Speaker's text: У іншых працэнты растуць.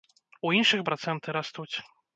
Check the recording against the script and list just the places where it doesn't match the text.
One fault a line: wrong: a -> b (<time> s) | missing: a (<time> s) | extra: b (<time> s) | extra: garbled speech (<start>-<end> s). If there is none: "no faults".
no faults